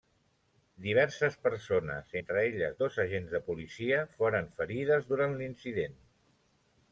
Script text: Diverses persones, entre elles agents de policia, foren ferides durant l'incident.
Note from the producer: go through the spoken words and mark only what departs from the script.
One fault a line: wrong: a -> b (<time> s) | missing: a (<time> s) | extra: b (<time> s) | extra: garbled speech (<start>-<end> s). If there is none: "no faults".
extra: dos (2.8 s)